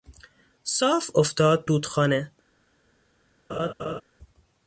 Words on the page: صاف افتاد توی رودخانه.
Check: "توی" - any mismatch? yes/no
yes